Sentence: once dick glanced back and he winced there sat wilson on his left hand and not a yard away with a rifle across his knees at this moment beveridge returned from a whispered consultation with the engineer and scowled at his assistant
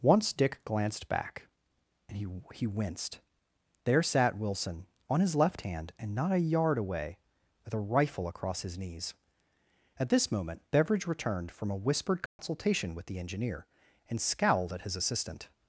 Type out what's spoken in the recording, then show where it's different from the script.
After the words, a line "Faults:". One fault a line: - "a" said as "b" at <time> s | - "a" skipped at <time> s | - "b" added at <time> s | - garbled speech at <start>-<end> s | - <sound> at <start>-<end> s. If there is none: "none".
once dick glanced back and he he winced there sat wilson on his left hand and not a yard away with a rifle across his knees at this moment beveridge returned from a whispered consultation with the engineer and scowled at his assistant
Faults:
- "he" added at 2.5 s
- dropout at 12.3-12.4 s